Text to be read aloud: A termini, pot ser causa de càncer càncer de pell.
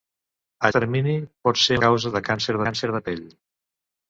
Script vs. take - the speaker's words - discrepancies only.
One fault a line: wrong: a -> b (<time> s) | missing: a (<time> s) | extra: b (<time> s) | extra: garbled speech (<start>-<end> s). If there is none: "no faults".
no faults